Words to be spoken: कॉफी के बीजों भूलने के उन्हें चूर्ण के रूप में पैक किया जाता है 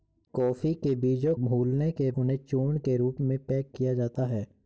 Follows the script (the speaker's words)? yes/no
yes